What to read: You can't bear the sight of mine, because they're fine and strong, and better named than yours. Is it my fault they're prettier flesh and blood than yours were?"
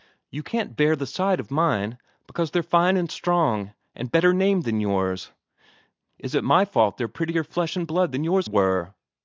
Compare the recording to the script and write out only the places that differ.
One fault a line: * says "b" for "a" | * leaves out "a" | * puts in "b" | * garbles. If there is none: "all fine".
all fine